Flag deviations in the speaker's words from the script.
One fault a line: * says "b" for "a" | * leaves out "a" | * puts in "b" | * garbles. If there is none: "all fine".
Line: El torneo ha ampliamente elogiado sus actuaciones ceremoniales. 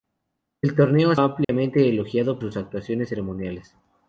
all fine